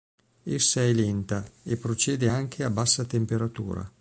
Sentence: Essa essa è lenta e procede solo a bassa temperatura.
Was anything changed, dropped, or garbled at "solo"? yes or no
yes